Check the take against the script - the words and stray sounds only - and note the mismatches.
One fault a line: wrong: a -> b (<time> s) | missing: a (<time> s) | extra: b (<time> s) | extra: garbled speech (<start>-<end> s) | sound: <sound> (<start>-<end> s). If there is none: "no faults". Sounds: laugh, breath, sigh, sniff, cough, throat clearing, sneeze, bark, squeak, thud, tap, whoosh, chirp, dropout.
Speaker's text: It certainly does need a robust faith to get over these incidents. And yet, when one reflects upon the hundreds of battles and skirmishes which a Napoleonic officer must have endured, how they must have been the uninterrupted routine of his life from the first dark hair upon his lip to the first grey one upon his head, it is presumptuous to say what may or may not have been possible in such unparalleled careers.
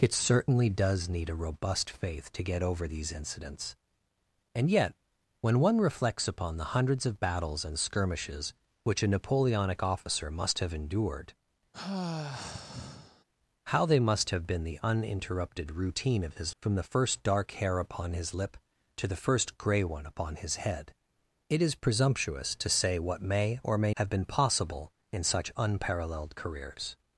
sound: sigh (11.7-13.2 s)
missing: life (16.6 s)
missing: not (23.9 s)